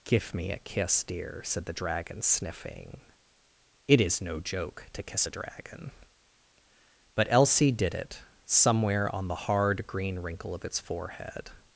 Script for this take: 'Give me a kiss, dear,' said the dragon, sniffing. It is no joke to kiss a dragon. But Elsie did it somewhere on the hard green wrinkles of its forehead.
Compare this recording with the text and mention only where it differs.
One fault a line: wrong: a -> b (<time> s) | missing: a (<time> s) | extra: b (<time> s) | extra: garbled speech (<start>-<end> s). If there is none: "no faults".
wrong: wrinkles -> wrinkle (10.2 s)